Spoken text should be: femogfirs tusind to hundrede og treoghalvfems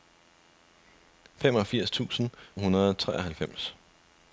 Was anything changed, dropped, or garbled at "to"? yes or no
yes